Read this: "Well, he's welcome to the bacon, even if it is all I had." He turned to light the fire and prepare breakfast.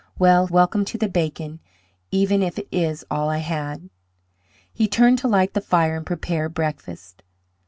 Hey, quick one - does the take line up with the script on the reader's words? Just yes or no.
no